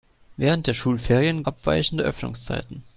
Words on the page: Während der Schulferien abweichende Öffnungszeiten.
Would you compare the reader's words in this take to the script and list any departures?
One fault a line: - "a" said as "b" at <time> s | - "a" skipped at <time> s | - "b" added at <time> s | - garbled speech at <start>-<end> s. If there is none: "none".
none